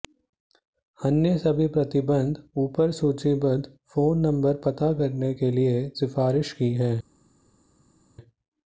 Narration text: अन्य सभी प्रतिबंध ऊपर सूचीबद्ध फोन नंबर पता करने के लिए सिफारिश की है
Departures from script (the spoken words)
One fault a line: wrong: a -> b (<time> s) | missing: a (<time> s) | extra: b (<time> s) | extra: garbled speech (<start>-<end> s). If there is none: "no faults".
no faults